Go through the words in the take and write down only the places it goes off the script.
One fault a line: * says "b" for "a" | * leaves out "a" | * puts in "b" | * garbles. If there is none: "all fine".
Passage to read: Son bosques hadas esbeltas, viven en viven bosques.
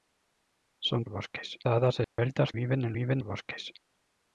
all fine